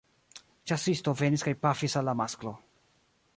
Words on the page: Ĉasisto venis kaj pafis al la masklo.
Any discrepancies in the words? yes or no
no